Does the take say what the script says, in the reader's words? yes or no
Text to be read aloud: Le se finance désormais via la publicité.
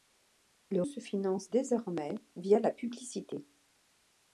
yes